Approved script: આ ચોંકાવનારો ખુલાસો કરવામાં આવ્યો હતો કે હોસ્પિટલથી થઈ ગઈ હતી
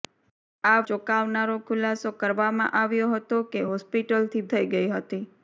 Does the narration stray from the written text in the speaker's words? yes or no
no